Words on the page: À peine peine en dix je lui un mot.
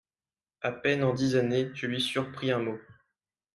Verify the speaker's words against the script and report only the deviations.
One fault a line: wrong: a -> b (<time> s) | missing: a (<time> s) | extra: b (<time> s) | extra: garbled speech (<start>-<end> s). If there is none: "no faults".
missing: peine (1.0 s)
extra: années (1.3 s)
extra: surpris (2.0 s)